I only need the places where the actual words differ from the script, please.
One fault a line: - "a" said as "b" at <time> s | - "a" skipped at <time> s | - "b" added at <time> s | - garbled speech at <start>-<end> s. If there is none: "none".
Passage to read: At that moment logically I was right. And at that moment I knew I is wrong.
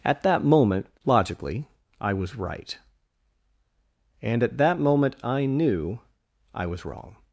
- "is" said as "was" at 6.7 s